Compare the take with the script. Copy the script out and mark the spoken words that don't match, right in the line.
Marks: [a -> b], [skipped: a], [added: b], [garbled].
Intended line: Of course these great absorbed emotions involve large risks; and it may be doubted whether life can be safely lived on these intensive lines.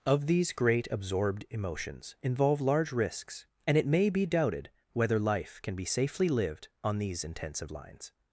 Of [skipped: course] these great absorbed emotions involve large risks; and it may be doubted whether life can be safely lived on these intensive lines.